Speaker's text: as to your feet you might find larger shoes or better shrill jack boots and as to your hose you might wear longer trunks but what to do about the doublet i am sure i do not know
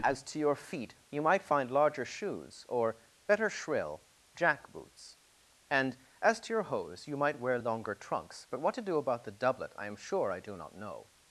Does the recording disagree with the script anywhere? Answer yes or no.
no